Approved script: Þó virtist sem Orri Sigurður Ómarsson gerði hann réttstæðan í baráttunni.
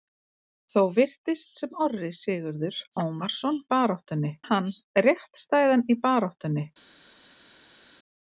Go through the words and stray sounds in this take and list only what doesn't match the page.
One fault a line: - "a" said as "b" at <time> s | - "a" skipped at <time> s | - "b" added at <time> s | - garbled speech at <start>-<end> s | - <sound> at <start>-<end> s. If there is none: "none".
- "gerði" said as "baráttunni" at 3.7 s